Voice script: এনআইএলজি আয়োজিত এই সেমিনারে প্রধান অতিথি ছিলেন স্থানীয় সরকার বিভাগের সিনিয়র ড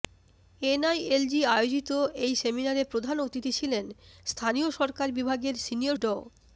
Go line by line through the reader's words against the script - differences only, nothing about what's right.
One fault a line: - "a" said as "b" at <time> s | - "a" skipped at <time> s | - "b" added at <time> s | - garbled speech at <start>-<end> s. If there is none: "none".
none